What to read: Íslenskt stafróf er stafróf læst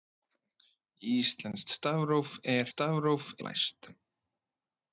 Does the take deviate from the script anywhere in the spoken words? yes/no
no